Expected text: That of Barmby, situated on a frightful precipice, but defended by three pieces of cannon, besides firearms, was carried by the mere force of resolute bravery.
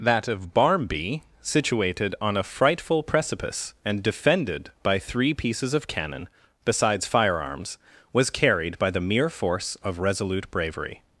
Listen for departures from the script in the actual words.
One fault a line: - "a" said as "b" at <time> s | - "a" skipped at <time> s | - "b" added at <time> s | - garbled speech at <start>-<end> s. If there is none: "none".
- "but" said as "and" at 3.9 s